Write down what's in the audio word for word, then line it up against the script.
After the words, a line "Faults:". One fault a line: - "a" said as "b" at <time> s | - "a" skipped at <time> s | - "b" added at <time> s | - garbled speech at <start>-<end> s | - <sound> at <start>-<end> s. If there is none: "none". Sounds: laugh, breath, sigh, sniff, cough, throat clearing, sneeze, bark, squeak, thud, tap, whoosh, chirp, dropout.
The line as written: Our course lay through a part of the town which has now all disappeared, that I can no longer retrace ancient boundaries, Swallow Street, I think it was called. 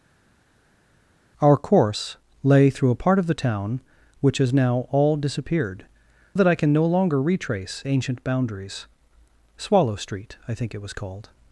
Our course lay through a part of the town which has now all disappeared, that I can no longer retrace ancient boundaries, Swallow Street, I think it was called.
Faults:
none